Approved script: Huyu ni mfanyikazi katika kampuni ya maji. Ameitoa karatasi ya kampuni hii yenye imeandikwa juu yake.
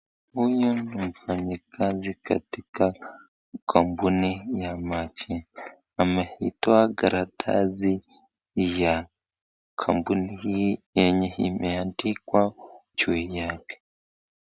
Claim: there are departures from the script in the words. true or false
false